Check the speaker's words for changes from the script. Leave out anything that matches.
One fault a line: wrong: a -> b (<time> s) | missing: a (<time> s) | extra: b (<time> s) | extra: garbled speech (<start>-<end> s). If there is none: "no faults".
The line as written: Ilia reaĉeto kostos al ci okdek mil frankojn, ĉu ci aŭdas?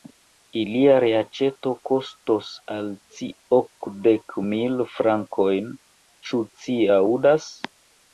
no faults